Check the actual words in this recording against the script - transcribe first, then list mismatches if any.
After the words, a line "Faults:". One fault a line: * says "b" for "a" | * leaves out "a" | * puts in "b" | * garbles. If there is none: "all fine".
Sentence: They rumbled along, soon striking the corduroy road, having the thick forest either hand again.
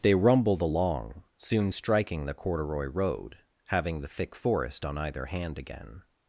They rumbled along, soon striking the corduroy road, having the thick forest on either hand again.
Faults:
* puts in "on"